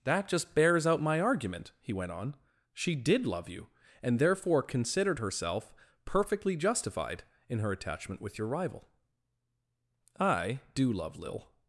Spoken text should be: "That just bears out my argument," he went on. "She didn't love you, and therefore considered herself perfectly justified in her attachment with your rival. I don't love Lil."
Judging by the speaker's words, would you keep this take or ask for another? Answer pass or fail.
fail